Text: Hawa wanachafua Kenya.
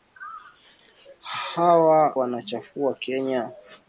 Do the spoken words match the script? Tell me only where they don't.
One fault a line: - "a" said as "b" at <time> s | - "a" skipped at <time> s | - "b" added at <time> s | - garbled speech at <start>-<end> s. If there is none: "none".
none